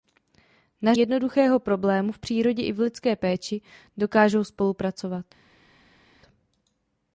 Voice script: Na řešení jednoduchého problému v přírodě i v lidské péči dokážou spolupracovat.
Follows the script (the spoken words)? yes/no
no